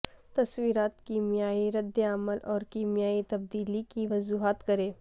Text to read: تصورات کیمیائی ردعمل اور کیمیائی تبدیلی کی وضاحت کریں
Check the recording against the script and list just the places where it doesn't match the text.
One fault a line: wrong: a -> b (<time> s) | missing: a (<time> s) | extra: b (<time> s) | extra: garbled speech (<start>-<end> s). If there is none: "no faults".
no faults